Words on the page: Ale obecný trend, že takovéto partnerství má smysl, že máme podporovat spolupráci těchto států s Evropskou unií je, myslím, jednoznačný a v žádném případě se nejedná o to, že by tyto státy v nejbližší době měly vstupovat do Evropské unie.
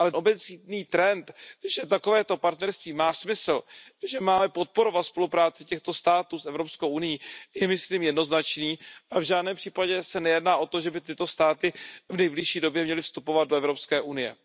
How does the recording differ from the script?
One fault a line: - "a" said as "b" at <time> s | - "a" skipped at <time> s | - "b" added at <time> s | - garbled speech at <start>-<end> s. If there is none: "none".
none